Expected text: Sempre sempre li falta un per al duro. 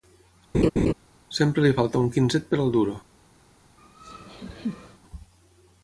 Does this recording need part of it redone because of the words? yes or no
yes